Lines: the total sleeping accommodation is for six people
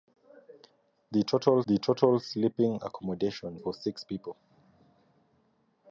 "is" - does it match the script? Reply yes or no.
no